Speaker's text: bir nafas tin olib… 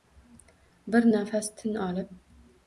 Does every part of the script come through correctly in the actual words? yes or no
yes